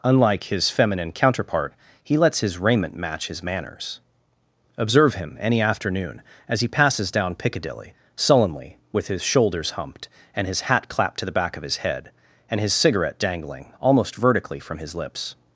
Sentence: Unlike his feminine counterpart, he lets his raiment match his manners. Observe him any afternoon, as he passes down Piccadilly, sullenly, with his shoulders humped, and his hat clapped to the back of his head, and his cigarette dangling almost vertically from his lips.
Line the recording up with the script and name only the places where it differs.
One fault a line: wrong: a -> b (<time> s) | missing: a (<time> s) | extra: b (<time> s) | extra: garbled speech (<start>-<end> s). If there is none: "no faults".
no faults